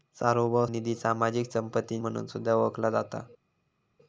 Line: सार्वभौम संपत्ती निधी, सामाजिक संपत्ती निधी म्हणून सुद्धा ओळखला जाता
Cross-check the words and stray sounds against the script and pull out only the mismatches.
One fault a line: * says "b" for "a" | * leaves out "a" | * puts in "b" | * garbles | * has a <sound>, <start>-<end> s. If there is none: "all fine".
* leaves out "संपत्ती"
* leaves out "निधी"